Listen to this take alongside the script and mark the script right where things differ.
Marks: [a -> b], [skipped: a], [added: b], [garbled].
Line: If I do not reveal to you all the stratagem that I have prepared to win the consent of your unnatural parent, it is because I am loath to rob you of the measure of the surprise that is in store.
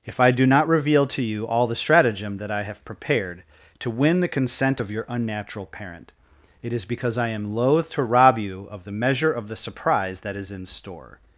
If I do not reveal to you all the stratagem that I have prepared to win the consent of your unnatural parent, it is because I am loath to rob you of the measure of the surprise that is in store.